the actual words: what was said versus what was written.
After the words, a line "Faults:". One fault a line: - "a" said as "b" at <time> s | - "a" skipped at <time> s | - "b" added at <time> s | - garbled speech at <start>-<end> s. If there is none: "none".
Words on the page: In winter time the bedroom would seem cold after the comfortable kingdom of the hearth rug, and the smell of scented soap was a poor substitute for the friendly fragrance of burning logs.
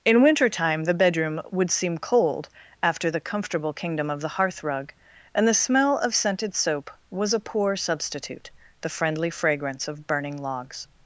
In winter time the bedroom would seem cold after the comfortable kingdom of the hearth rug, and the smell of scented soap was a poor substitute the friendly fragrance of burning logs.
Faults:
- "for" skipped at 8.5 s